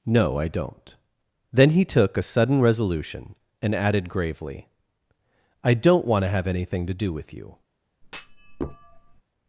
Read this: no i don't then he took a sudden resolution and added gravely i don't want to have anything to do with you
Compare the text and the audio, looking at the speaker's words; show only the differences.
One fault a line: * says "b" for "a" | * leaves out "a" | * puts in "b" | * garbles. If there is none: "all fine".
all fine